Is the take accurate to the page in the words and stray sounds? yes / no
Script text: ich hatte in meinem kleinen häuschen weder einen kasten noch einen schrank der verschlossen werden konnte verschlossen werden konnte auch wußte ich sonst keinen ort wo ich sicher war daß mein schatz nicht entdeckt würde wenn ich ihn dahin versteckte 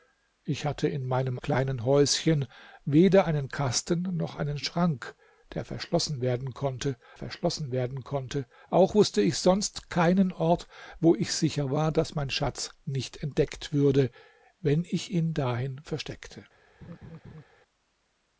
no